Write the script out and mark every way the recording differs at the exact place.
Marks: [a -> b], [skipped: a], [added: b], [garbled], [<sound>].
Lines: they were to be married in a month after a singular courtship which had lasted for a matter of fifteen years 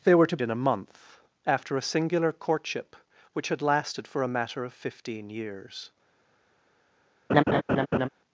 they were to [skipped: be married] in a month after a singular courtship which had lasted for a matter of fifteen years [laugh]